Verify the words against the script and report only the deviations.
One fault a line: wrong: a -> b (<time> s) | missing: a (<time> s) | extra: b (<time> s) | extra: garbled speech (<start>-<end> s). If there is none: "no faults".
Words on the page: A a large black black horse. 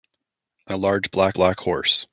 no faults